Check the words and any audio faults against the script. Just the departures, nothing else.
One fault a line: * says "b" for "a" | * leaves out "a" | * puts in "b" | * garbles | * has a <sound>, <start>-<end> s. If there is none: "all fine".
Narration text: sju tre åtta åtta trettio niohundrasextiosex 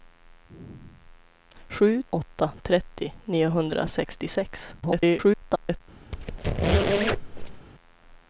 * leaves out "tre åtta"
* garbles
* has a squeak, 6.1-7.7 s